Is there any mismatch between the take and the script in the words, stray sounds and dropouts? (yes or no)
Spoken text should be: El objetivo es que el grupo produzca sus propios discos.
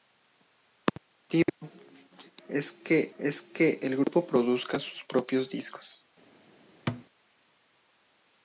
yes